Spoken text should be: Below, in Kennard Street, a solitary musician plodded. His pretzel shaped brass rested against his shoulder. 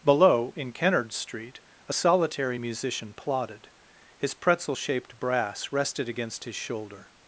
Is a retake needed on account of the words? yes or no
no